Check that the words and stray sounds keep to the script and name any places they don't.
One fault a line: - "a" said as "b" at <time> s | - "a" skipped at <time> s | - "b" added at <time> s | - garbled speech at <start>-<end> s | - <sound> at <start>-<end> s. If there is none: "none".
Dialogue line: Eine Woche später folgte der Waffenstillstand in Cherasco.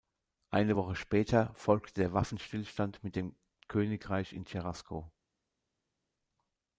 - "mit dem Königreich" added at 3.0 s